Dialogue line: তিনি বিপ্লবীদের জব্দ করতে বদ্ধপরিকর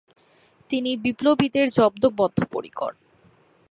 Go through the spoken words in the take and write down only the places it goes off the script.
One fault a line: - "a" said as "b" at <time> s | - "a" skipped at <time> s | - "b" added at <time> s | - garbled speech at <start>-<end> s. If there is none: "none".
- "করতে" skipped at 2.0 s